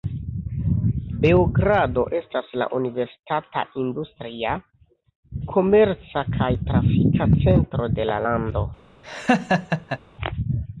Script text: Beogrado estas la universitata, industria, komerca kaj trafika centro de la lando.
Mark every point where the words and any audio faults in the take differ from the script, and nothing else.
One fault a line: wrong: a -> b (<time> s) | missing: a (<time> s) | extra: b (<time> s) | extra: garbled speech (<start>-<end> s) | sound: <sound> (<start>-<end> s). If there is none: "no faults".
sound: laugh (9.0-10.0 s)